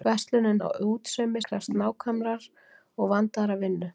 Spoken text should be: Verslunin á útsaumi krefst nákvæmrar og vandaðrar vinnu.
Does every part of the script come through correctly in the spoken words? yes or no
yes